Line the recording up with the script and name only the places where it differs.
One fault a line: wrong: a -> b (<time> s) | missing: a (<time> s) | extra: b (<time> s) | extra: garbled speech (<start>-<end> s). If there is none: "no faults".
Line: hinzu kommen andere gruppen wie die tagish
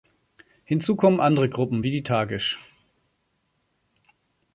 no faults